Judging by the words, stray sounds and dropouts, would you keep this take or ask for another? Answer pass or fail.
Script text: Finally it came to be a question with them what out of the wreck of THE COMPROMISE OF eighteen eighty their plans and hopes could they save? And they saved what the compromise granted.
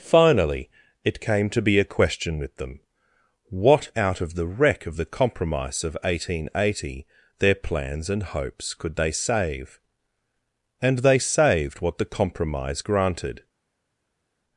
pass